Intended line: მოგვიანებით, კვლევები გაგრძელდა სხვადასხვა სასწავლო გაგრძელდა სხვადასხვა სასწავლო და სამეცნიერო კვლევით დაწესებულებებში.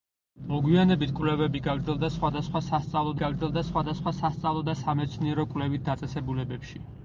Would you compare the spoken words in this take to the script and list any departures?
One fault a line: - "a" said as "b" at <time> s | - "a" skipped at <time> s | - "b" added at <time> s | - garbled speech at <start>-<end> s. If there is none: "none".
none